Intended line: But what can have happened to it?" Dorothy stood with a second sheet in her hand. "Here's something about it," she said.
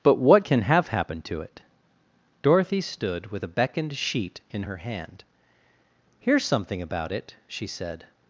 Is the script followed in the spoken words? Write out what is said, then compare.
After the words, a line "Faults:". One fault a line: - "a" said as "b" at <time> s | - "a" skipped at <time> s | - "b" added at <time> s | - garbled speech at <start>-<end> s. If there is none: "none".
But what can have happened to it?" Dorothy stood with a beckoned sheet in her hand. "Here's something about it," she said.
Faults:
- "second" said as "beckoned" at 3.5 s